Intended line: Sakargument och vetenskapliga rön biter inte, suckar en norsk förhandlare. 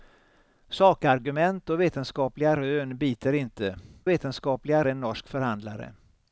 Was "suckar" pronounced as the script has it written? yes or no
no